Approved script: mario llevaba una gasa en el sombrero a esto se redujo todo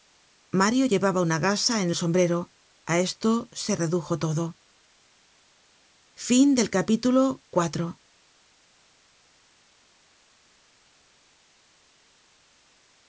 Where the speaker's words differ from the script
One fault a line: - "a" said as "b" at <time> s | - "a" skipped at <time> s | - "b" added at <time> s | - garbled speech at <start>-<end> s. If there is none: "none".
none